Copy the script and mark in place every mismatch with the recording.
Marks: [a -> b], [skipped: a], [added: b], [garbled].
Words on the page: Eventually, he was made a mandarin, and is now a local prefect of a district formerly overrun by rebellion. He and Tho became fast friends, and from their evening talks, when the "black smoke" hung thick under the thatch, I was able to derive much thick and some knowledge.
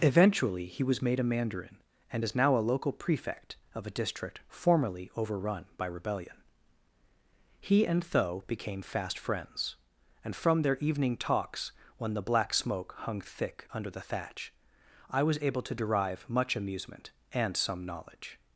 Eventually, he was made a mandarin, and is now a local prefect of a district formerly overrun by rebellion. He and Tho became fast friends, and from their evening talks, when the "black smoke" hung thick under the thatch, I was able to derive much [thick -> amusement] and some knowledge.